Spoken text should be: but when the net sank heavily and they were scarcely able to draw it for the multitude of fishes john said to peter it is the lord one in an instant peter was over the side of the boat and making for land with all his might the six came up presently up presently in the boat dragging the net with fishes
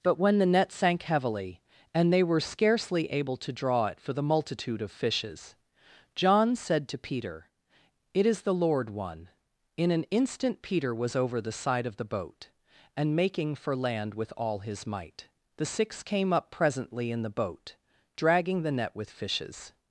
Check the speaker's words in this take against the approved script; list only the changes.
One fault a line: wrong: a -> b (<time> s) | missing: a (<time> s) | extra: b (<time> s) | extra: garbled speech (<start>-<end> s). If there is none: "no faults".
missing: up presently (17.1 s)